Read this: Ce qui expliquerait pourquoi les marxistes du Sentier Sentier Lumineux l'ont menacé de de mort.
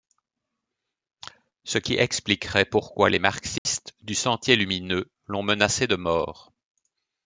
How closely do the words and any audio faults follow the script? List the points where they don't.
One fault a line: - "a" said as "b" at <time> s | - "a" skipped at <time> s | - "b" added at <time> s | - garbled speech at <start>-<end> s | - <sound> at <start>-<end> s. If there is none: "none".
- dropout at 3.6-3.7 s
- "Sentier" skipped at 4.5 s
- "de" skipped at 6.0 s